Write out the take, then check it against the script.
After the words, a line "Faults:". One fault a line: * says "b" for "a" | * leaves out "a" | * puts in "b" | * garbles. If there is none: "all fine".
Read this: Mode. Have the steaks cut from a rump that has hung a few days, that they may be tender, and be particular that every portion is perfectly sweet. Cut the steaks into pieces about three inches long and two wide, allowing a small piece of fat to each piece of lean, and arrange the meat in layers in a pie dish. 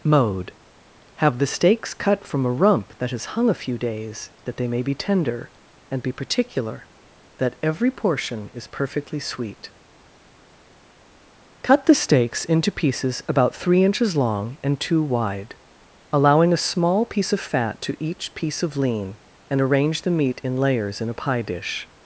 Mode. Have the steaks cut from a rump that has hung a few days, that they may be tender, and be particular that every portion is perfectly sweet. Cut the steaks into pieces about three inches long and two wide, allowing a small piece of fat to each piece of lean, and arrange the meat in layers in a pie dish.
Faults:
all fine